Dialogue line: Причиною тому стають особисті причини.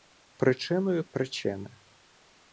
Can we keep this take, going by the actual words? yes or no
no